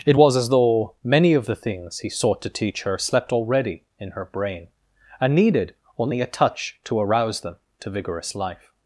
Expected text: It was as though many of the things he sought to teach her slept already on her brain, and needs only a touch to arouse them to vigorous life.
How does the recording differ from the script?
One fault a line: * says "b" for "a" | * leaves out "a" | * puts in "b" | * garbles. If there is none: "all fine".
* says "in" for "on"
* says "needed" for "needs"